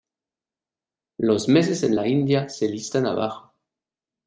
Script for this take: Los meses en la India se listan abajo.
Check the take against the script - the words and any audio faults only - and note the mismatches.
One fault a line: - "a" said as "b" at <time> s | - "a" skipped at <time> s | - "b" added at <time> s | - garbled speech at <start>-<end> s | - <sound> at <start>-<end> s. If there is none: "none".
none